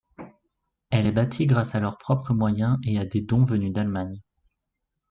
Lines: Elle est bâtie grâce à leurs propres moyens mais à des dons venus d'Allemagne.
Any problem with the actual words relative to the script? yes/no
yes